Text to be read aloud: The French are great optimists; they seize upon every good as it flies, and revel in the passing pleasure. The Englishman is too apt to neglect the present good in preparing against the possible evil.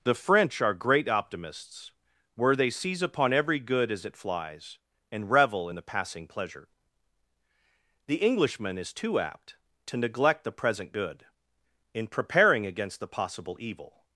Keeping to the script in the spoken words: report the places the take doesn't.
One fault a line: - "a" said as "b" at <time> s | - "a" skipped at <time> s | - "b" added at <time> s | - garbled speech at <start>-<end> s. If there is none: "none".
- "where" added at 2.3 s